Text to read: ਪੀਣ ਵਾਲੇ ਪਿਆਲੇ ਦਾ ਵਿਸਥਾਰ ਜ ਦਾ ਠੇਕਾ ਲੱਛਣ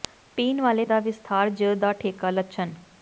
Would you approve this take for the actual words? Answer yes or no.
no